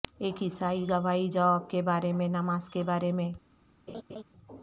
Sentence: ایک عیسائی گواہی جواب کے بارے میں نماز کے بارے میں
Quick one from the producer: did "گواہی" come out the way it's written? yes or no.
yes